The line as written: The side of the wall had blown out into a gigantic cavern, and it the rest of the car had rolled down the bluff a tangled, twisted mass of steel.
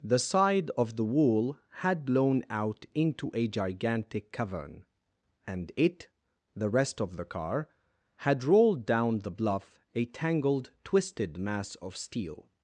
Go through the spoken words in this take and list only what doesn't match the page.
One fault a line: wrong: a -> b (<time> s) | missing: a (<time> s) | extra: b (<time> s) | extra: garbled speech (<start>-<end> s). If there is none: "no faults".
no faults